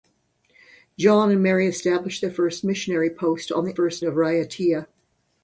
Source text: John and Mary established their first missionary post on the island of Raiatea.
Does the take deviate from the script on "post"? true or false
false